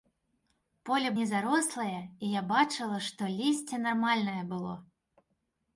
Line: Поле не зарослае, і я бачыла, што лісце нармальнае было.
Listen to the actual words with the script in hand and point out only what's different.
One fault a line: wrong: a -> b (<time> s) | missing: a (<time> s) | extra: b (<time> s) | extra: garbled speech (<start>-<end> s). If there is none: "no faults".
no faults